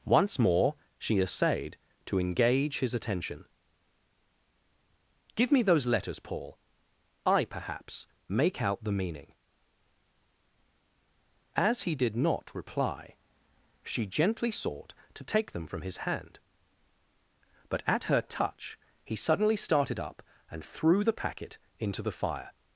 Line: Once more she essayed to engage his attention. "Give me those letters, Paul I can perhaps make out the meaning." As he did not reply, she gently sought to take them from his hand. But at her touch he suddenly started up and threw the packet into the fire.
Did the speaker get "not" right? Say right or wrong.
right